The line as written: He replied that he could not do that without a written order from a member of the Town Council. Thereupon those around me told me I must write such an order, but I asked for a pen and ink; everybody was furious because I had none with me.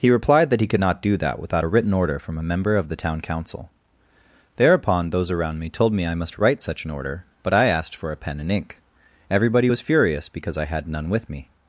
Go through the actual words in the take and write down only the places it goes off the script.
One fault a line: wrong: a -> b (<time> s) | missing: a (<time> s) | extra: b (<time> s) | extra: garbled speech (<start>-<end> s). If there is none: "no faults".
no faults